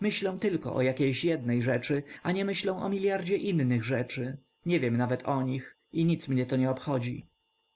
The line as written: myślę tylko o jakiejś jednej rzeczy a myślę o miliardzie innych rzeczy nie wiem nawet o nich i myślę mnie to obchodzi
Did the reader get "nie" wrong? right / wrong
right